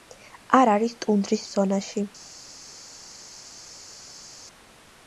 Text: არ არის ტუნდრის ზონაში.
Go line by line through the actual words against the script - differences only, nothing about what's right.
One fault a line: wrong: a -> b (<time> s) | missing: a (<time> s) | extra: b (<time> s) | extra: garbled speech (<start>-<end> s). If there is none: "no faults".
no faults